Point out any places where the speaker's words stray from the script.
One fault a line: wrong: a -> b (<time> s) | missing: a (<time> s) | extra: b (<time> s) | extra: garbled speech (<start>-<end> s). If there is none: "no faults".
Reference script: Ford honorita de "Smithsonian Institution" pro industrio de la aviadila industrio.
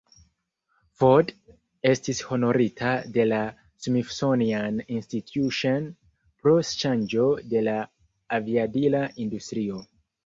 extra: estis (1.9 s)
extra: la (3.3 s)
wrong: industrio -> ŝanĝo (6.7 s)